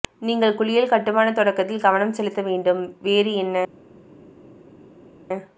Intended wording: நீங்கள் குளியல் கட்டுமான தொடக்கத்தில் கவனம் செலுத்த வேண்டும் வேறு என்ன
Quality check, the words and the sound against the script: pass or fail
pass